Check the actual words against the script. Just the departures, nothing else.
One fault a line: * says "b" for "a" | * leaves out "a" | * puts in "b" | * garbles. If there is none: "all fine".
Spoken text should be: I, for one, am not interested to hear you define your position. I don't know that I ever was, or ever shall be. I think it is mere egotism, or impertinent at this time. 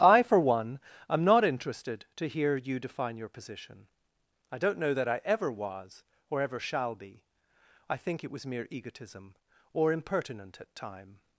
* says "was" for "is"
* leaves out "this"